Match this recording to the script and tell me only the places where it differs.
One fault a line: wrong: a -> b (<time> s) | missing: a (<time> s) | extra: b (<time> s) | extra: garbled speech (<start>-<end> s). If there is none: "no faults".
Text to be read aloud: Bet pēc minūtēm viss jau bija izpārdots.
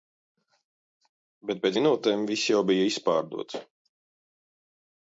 no faults